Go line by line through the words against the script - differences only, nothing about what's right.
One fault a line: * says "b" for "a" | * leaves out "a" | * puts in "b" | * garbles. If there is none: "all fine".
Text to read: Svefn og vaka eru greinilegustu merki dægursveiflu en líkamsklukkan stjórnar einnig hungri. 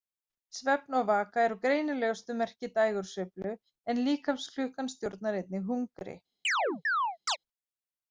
all fine